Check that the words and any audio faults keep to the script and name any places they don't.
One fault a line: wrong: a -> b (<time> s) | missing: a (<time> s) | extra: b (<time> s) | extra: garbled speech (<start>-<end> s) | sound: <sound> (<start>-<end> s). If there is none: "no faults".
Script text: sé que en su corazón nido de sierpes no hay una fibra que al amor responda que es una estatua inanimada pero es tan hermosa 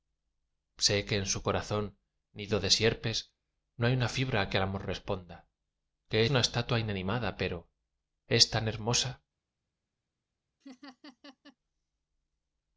missing: es (6.2 s)
sound: laugh (10.6-11.6 s)